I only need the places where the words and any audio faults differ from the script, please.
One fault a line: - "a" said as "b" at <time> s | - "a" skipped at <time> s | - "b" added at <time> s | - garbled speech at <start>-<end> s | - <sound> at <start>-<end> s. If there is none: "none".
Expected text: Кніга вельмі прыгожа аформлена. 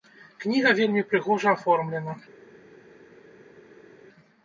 none